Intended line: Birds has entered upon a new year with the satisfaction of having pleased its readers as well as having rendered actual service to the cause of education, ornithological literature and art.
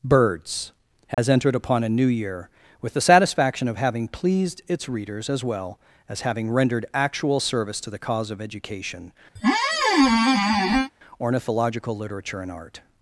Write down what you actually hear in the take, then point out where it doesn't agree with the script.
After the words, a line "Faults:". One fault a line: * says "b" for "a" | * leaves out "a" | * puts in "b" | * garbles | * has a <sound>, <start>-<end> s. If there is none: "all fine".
Birds has entered upon a new year with the satisfaction of having pleased its readers as well as having rendered actual service to the cause of education, ornithological literature and art.
Faults:
* has a dropout, 1.1-1.2 s
* has a squeak, 9.4-10.9 s